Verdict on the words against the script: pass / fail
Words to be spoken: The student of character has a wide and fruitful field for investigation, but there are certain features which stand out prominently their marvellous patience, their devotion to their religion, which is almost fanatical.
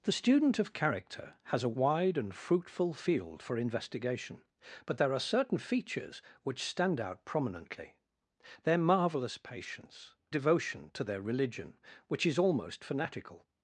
fail